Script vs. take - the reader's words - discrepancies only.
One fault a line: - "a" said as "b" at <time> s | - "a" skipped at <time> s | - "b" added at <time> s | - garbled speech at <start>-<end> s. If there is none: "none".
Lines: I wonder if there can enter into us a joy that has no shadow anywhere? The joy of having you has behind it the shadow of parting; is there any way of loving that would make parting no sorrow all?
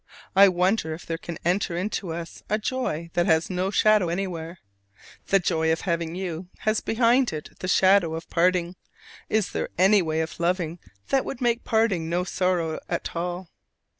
- "at" added at 12.9 s